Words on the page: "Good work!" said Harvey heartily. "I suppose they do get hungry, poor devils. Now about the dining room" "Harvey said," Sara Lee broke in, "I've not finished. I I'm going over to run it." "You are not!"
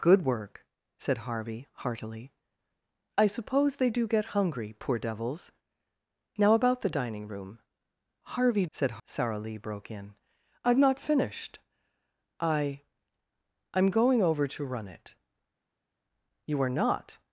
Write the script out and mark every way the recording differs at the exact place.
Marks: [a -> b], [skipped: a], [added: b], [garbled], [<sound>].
"Good work!" said Harvey heartily. "I suppose they do get hungry, poor devils. Now about the dining room" "Harvey said," Sara Lee broke in, "I've not finished. I I'm going over to run it." "You are not!"